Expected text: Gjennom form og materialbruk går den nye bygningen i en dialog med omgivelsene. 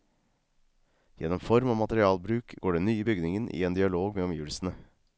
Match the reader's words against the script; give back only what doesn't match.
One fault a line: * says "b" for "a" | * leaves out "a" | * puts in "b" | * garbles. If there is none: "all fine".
all fine